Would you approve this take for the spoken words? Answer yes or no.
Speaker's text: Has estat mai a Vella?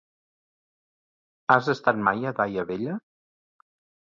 no